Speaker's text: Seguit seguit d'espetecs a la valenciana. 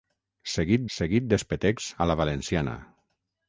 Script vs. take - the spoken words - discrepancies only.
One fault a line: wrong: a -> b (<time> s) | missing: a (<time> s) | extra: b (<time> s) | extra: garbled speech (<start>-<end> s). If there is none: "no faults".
no faults